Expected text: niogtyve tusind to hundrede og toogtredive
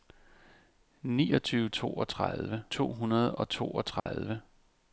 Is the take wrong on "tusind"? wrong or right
wrong